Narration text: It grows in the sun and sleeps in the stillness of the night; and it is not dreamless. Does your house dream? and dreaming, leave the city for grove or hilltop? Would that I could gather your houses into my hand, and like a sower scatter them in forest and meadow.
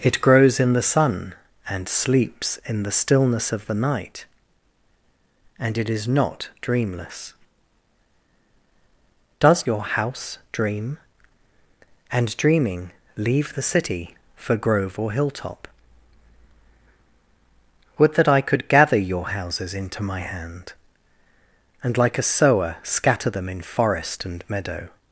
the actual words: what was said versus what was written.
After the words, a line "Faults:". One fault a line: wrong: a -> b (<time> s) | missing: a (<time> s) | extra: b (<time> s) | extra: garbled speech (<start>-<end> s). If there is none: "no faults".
It grows in the sun and sleeps in the stillness of the night; and it is not dreamless. Does your house dream? and dreaming, leave the city for grove or hilltop? Would that I could gather your houses into my hand, and like a sower scatter them in forest and meadow.
Faults:
no faults